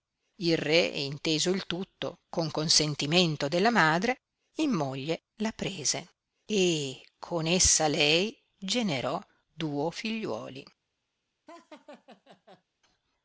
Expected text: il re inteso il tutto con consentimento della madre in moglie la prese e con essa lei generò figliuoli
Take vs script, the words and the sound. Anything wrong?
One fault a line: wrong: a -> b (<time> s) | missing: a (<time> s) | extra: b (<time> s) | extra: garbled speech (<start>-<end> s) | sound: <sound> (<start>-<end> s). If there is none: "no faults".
extra: duo (9.5 s)
sound: laugh (11.5-12.6 s)